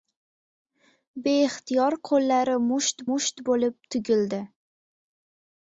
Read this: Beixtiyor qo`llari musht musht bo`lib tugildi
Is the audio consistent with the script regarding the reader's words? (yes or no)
yes